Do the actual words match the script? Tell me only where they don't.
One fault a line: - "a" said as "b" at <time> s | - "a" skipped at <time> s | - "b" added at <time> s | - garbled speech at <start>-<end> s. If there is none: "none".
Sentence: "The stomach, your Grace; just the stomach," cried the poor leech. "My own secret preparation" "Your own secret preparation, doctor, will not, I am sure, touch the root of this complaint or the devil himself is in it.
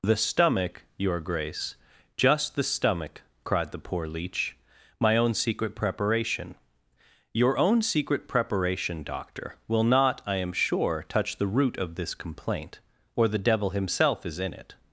none